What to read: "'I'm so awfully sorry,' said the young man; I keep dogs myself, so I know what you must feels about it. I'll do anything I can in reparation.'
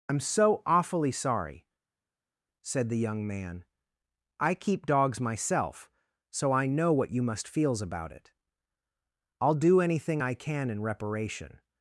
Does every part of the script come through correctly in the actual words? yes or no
yes